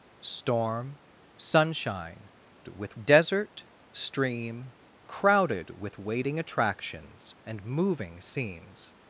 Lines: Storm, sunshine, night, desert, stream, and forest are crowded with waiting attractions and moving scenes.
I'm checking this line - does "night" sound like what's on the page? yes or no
no